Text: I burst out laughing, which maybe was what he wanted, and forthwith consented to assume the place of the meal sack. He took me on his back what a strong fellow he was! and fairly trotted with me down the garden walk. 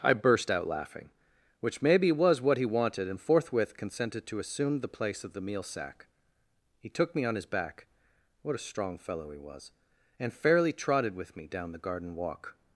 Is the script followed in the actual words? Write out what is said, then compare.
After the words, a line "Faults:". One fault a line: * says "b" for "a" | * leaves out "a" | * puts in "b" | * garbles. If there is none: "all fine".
I burst out laughing, which maybe was what he wanted, and forthwith consented to assume the place of the meal sack. He took me on his back what a strong fellow he was! and fairly trotted with me down the garden walk.
Faults:
all fine